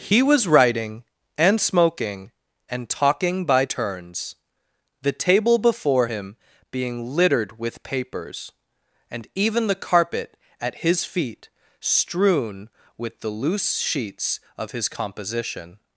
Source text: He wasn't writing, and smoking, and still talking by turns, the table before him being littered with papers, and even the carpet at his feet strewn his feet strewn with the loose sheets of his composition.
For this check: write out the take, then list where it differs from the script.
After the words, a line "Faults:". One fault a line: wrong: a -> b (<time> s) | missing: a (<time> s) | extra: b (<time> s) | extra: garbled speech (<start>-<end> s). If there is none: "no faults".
He was writing, and smoking, and talking by turns, the table before him being littered with papers, and even the carpet at his feet strewn with the loose sheets of his composition.
Faults:
wrong: wasn't -> was (0.2 s)
missing: still (2.9 s)
missing: his feet strewn (12.7 s)